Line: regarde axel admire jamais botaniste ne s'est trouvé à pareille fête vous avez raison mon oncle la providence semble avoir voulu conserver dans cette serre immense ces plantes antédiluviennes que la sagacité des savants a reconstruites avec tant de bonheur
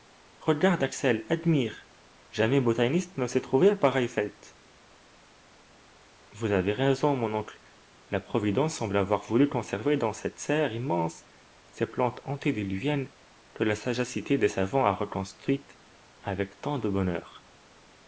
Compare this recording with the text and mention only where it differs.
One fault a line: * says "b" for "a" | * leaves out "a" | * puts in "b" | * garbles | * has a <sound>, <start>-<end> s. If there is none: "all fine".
all fine